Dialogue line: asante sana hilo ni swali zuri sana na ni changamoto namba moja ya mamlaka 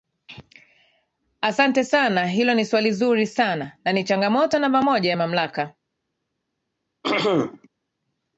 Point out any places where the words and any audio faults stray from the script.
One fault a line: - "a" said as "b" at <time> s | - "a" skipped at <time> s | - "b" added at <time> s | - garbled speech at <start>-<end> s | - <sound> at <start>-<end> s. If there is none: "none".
- throat clearing at 7.0-7.7 s